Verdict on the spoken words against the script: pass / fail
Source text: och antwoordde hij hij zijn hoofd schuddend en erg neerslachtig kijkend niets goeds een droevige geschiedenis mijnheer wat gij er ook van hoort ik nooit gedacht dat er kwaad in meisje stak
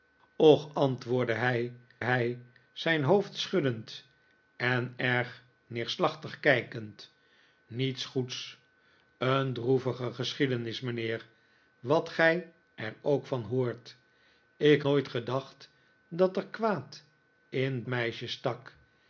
pass